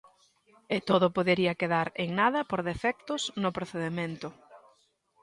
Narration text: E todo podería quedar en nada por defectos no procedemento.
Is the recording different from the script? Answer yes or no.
no